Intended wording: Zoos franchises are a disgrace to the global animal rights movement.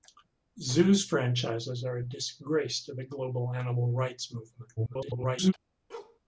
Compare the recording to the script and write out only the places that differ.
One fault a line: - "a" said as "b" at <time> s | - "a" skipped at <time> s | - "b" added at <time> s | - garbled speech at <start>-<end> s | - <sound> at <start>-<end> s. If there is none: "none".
- garbled speech at 4.8-5.5 s
- bark at 5.9-6.2 s